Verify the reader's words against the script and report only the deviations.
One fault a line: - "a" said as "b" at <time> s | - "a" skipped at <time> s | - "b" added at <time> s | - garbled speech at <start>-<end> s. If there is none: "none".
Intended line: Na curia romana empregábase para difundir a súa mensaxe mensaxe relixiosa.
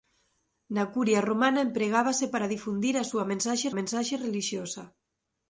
none